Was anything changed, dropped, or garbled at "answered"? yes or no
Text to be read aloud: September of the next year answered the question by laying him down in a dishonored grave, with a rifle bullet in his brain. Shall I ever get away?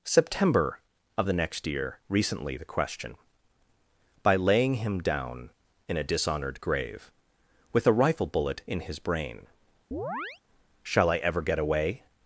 yes